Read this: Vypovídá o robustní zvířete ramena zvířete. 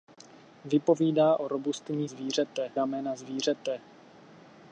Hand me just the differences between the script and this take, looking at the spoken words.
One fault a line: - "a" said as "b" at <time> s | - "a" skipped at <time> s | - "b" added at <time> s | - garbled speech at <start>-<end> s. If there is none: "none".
none